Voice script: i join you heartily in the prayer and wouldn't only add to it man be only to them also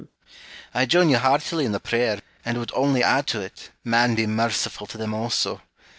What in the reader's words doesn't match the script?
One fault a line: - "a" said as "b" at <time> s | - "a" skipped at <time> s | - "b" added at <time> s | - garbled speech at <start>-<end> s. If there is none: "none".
- "wouldn't" said as "would" at 2.6 s
- "only" said as "merciful" at 4.3 s